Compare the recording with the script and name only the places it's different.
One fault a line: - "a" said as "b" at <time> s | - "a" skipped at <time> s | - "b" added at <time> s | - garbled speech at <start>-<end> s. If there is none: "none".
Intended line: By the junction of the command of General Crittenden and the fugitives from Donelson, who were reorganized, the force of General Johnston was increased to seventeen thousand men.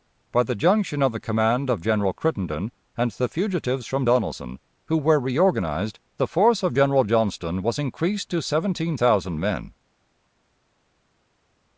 none